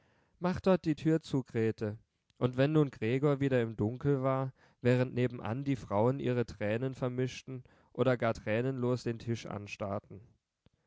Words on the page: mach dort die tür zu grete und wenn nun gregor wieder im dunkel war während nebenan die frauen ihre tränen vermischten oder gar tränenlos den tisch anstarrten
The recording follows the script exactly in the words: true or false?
true